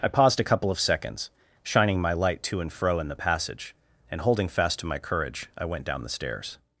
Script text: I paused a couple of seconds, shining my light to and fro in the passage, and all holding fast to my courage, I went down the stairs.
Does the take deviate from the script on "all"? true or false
true